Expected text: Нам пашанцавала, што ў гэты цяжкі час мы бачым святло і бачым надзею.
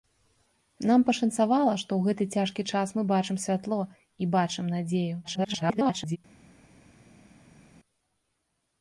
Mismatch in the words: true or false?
true